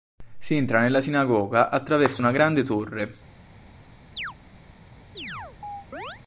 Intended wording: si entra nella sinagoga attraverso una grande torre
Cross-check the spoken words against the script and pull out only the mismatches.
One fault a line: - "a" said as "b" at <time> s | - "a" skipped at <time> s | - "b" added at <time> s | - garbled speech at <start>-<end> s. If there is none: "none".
none